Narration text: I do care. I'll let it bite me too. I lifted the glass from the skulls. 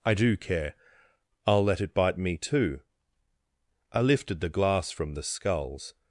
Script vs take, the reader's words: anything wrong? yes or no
no